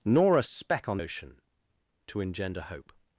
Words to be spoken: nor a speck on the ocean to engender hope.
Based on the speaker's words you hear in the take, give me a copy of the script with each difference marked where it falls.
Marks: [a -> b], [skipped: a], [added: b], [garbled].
nor a speck on [skipped: the] ocean to engender hope.